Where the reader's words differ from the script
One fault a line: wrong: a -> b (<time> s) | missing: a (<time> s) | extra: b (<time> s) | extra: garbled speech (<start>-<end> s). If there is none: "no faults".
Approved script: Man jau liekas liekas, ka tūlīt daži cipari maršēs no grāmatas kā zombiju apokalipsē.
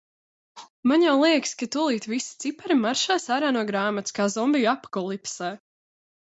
missing: liekas (1.5 s)
wrong: daži -> visi (2.1 s)
extra: ārā (3.4 s)